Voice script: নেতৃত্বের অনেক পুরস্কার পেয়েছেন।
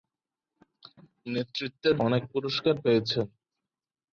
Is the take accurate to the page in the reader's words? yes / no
yes